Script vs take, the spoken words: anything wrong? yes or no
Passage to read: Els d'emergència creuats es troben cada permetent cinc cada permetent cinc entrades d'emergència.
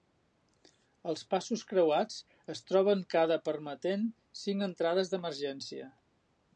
yes